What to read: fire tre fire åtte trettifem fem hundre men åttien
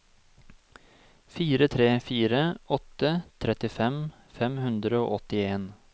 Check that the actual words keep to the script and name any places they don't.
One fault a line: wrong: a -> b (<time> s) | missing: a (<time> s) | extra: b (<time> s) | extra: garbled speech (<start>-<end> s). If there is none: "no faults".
wrong: men -> og (5.0 s)